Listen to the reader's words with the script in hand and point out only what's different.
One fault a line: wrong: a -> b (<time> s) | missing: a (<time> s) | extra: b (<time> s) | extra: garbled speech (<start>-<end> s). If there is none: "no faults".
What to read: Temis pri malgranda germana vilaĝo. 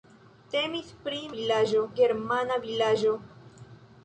wrong: malgranda -> vilaĝo (1.4 s)